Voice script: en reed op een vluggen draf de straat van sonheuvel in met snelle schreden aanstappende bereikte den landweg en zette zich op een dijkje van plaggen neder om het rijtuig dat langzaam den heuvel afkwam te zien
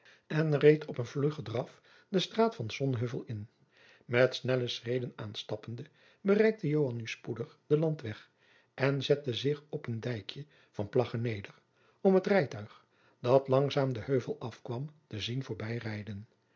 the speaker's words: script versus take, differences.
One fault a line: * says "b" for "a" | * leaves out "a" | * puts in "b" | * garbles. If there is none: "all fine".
* puts in "joan nu spoedig"